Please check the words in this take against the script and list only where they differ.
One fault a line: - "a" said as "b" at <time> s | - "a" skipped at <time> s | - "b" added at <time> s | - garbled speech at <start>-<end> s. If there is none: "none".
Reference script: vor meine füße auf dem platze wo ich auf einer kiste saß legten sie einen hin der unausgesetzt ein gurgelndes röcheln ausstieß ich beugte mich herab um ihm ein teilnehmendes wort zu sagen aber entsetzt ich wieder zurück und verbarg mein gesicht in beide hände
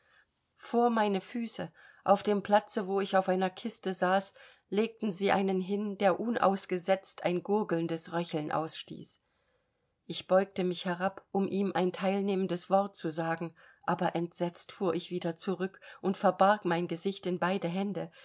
- "fuhr" added at 14.7 s